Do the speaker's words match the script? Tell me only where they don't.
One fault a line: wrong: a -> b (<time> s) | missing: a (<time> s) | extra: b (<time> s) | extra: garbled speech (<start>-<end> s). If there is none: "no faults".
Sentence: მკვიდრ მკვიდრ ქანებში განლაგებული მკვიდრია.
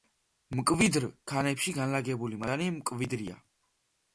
missing: მკვიდრ (1.1 s)
extra: მადანი (2.5 s)